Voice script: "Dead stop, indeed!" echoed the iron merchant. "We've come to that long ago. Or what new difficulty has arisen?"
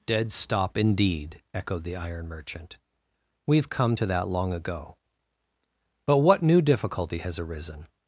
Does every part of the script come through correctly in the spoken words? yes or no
no